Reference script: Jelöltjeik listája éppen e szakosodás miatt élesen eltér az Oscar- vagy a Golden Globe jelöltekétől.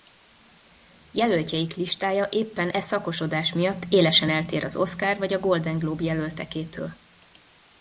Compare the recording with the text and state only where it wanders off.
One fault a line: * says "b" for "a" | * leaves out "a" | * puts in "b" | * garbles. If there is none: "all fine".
all fine